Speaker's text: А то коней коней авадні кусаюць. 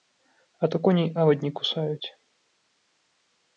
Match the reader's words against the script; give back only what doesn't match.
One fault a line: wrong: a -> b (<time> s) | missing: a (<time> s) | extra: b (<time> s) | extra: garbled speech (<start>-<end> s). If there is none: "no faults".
missing: коней (1.1 s)